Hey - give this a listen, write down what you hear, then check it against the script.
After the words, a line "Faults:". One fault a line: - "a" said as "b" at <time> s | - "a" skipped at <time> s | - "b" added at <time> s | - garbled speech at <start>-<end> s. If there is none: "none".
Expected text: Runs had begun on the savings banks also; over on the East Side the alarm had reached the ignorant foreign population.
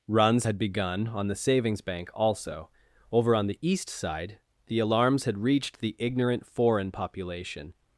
Runs had begun on the savings bank also; over on the East Side the alarms had reached the ignorant foreign population.
Faults:
- "banks" said as "bank" at 1.8 s
- "alarm" said as "alarms" at 4.8 s